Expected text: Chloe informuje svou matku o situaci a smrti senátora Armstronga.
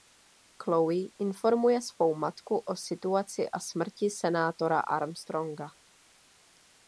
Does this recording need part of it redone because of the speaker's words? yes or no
no